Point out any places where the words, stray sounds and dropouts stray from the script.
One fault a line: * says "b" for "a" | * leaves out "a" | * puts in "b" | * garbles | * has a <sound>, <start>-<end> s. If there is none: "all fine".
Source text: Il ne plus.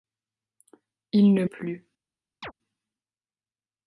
* has a chirp, 2.4-2.5 s